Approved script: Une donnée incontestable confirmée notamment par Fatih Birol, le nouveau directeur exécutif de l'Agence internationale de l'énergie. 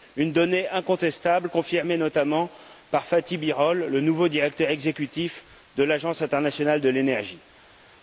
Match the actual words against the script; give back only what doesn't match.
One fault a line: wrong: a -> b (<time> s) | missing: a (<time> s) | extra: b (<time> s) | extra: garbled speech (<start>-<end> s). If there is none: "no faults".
no faults